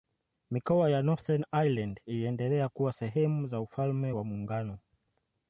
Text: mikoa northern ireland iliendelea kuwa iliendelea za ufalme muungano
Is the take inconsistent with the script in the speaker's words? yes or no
yes